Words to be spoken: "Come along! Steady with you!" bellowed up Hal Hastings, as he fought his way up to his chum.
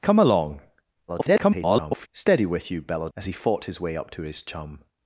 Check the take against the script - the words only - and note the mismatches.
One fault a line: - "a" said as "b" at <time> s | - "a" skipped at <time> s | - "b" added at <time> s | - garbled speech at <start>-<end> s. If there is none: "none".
- garbled speech at 1.1-2.1 s
- "up Hal Hastings" skipped at 3.1 s